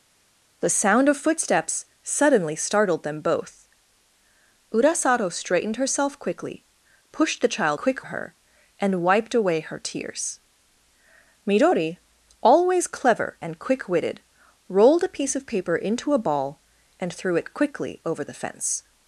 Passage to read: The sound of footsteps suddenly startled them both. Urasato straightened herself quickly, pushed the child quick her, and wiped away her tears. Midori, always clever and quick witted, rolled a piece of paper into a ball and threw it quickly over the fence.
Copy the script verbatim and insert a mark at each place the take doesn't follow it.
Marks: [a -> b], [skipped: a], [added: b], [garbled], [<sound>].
The sound of footsteps suddenly startled them both. Urasato straightened herself quickly, pushed the child quick her, and wiped away her tears. Midori, always clever and quick witted, rolled a piece of paper into a ball and threw it quickly over the fence.